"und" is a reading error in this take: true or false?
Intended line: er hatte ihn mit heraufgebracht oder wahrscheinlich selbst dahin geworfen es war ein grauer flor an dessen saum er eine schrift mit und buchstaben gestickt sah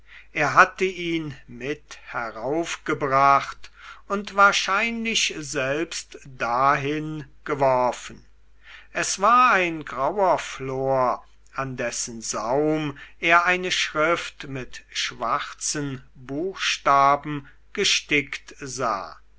true